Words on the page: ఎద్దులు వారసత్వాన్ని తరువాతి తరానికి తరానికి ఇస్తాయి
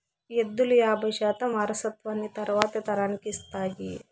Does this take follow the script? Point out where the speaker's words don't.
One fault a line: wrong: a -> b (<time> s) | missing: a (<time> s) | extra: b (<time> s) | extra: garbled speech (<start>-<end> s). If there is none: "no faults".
extra: యాబై శాతం (0.8 s)
missing: తరానికి (3.3 s)